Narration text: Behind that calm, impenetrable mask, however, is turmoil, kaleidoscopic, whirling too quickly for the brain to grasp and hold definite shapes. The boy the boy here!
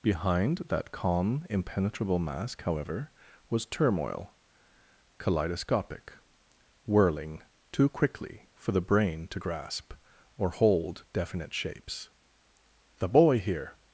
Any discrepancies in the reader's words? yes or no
yes